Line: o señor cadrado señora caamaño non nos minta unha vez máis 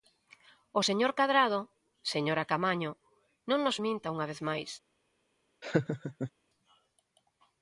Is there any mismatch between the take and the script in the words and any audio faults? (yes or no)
yes